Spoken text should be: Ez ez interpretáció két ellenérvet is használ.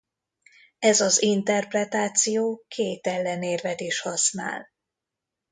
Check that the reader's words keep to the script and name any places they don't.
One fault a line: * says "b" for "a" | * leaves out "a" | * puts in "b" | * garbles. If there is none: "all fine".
* says "az" for "ez"